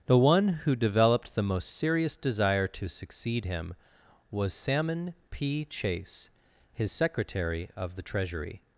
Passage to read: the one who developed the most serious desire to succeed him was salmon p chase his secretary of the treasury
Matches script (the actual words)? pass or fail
pass